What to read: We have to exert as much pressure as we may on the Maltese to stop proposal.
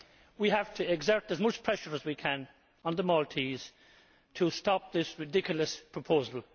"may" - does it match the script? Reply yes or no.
no